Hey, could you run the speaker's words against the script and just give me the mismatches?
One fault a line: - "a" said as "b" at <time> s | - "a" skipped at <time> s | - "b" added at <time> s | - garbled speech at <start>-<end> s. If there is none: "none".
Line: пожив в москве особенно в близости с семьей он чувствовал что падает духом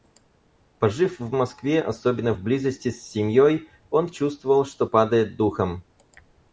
none